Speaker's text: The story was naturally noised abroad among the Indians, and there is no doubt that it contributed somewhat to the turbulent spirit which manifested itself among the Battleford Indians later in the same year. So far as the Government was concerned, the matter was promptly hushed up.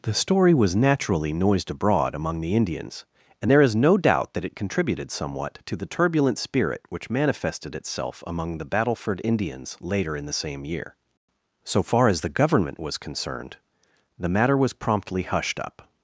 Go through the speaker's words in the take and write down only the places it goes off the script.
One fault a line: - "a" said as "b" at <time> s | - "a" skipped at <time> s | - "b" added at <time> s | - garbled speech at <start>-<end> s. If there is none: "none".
none